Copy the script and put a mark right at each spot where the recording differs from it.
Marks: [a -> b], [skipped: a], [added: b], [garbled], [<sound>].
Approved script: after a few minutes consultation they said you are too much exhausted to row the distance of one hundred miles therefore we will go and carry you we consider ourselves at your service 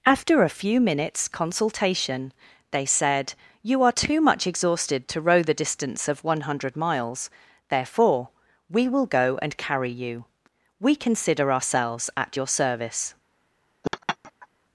after a few minutes consultation they said you are too much exhausted to row the distance of one hundred miles therefore we will go and carry you we consider ourselves at your service [laugh]